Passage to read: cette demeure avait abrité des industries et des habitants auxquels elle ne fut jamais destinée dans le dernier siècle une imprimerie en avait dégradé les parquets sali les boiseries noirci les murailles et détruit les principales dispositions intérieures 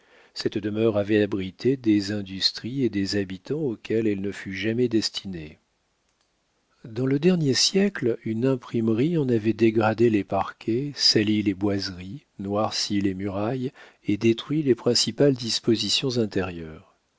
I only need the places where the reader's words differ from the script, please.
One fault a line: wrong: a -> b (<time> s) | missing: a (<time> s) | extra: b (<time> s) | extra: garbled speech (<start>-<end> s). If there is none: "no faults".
no faults